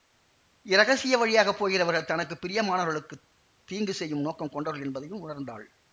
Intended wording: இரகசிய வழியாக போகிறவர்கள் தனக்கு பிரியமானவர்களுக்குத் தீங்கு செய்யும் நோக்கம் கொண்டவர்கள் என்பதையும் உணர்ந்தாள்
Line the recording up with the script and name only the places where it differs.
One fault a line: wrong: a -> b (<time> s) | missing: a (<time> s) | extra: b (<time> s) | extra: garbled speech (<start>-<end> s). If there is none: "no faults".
no faults